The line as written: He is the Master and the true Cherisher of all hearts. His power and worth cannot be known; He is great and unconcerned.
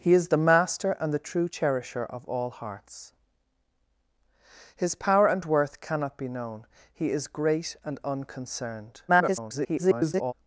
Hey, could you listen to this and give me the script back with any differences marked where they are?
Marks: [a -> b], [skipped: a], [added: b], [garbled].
He is the Master and the true Cherisher of all hearts. His power and worth cannot be known; He is great and unconcerned. [garbled]